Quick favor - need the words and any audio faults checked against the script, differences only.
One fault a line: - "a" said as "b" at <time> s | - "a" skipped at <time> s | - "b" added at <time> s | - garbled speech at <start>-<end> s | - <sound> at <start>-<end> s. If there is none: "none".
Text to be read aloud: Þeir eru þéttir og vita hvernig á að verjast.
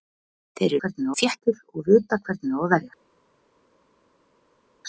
- "eru" said as "hvernig" at 0.8 s